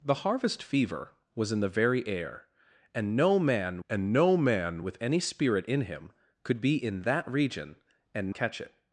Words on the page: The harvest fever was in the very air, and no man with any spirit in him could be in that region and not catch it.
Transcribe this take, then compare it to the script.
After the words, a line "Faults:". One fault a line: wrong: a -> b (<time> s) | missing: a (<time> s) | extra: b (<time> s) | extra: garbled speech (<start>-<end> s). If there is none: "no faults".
The harvest fever was in the very air, and no man and no man with any spirit in him could be in that region and catch it.
Faults:
extra: and no man (3.9 s)
missing: not (8.4 s)